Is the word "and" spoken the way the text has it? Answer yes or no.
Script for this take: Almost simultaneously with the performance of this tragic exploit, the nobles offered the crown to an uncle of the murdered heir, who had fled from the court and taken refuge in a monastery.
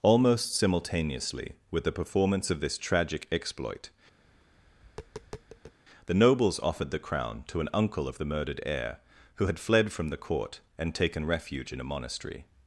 yes